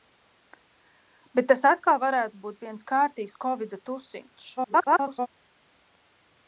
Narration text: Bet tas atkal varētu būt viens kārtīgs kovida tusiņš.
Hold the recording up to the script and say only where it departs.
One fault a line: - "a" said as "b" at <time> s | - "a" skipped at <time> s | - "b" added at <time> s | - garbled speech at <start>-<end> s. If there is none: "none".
- garbled speech at 4.6-5.3 s